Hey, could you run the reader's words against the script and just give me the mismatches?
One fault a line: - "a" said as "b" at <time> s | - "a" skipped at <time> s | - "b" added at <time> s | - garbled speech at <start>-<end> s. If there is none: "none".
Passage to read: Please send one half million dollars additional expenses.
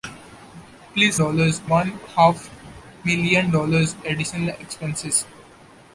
- "send" said as "dollars" at 1.2 s